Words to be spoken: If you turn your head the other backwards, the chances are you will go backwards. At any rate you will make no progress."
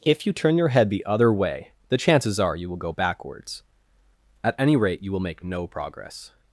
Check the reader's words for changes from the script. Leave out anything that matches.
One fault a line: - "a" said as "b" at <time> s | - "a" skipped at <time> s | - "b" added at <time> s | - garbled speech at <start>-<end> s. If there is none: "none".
- "backwards" said as "way" at 1.3 s